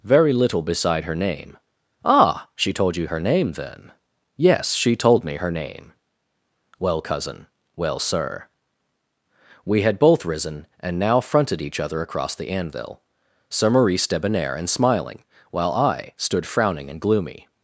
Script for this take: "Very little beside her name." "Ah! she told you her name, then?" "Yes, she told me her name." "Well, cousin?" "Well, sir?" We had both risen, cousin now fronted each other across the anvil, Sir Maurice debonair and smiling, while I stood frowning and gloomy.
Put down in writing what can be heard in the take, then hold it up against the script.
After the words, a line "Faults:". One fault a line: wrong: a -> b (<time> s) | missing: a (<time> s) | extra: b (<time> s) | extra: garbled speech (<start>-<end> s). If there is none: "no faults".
"Very little beside her name." "Ah! she told you her name, then?" "Yes, she told me her name." "Well, cousin?" "Well, sir?" We had both risen, and now fronted each other across the anvil, Sir Maurice debonair and smiling, while I stood frowning and gloomy.
Faults:
wrong: cousin -> and (10.8 s)